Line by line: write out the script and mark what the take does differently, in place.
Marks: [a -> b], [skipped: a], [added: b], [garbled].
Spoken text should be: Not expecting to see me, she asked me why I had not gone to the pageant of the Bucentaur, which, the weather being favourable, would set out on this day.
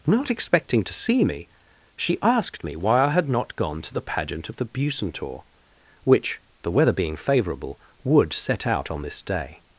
Not expecting to see me, she asked me why I had not gone to the pageant of the Bucentaur, which, the weather being favourable, would set out on this day.